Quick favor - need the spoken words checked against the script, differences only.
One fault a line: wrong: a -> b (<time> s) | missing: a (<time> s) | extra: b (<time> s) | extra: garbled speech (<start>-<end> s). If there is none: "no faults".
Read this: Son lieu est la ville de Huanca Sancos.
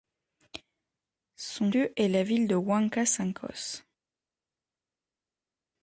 no faults